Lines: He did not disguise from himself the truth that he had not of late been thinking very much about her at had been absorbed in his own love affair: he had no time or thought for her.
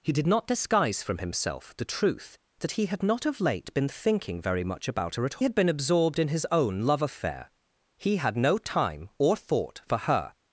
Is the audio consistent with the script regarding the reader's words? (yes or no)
yes